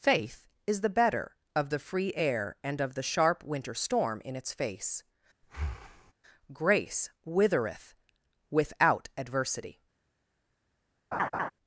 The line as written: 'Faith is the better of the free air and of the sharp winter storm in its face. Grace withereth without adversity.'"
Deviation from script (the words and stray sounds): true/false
true